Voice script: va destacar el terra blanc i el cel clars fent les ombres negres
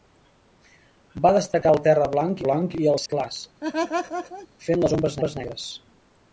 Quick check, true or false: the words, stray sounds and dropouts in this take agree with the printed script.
false